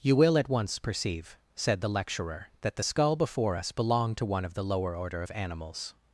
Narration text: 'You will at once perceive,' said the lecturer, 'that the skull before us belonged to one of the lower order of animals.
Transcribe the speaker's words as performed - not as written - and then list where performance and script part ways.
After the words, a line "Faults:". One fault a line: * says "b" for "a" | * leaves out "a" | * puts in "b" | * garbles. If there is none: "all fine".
'You will at once perceive,' said the lecturer, 'that the skull before us belonged to one of the lower order of animals.
Faults:
all fine